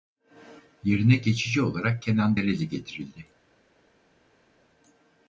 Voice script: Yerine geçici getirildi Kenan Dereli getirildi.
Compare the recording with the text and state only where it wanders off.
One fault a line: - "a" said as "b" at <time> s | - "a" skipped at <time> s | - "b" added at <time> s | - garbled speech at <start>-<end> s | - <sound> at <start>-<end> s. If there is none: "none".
- "getirildi" said as "olarak" at 1.6 s